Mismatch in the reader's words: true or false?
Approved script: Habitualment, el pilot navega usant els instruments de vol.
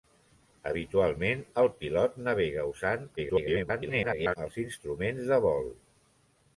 true